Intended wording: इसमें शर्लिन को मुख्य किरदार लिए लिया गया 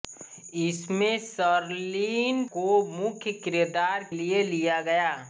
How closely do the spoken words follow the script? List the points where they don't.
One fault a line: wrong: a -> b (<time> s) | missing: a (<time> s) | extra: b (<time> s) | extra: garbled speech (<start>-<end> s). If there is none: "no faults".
no faults